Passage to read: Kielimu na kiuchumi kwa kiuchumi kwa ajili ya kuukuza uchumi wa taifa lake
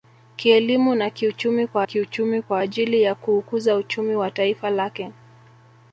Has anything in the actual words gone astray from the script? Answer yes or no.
no